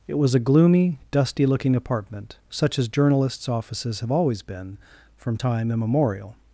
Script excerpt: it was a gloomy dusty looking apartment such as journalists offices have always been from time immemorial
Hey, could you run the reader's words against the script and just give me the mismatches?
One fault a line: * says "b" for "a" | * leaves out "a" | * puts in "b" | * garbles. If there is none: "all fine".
all fine